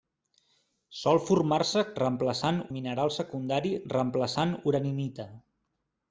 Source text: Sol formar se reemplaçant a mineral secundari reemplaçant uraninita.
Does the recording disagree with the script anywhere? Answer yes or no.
no